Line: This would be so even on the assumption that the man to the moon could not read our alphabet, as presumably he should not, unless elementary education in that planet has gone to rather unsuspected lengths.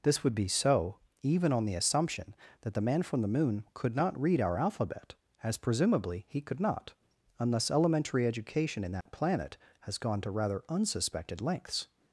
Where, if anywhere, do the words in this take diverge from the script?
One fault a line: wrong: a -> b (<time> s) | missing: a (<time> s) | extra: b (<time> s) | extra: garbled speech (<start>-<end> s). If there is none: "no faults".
wrong: to -> from (3.0 s)
wrong: should -> could (6.4 s)